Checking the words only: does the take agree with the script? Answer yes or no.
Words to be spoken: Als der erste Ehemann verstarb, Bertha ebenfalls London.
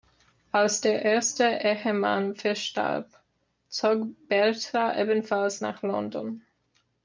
no